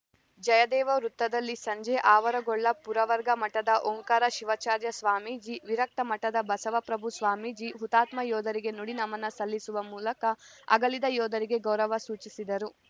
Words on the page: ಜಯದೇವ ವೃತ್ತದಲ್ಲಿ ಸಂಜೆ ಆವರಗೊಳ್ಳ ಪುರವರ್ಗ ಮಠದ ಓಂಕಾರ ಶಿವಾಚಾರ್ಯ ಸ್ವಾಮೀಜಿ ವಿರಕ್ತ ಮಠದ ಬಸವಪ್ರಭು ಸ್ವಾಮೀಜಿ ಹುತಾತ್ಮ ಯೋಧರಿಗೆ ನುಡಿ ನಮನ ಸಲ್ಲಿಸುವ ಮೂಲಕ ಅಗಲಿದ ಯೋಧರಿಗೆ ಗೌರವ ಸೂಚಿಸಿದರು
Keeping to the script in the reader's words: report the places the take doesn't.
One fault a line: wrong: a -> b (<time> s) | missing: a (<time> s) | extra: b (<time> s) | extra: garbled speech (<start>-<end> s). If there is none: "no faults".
no faults